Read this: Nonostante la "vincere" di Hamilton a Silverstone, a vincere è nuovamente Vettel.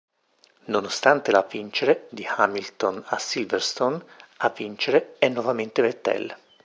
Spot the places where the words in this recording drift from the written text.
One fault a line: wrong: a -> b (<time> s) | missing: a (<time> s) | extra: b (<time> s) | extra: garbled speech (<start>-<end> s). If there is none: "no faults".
no faults